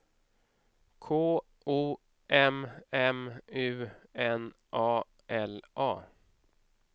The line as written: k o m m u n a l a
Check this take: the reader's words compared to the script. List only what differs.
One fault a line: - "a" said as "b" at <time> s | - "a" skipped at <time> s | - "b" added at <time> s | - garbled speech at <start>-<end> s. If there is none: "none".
none